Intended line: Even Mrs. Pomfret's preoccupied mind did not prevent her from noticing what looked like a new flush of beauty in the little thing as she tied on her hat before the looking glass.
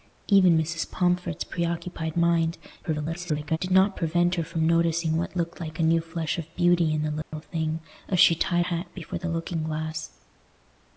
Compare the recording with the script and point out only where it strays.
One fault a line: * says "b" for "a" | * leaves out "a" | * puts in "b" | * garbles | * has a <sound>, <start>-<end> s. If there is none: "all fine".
* garbles
* has a dropout, 7.2-7.3 s
* leaves out "on her"